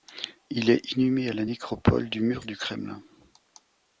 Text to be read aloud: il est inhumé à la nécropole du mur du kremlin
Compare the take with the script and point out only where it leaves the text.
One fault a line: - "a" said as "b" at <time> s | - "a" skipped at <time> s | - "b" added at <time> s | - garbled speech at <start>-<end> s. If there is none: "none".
none